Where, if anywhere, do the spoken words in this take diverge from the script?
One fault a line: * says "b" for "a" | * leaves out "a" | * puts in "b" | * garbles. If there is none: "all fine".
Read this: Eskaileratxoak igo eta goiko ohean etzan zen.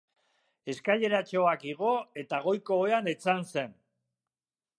all fine